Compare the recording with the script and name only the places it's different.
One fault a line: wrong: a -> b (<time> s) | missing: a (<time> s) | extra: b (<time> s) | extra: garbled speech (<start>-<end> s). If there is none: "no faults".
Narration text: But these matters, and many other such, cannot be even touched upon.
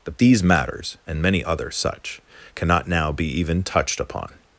extra: now (2.9 s)